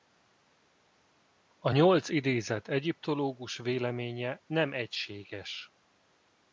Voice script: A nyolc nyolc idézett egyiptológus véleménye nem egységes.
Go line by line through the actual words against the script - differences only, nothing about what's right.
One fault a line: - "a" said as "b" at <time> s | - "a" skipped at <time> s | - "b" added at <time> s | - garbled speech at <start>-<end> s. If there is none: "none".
- "nyolc" skipped at 2.1 s